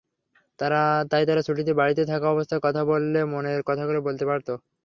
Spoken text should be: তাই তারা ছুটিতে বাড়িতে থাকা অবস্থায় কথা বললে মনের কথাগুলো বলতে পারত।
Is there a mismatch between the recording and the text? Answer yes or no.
no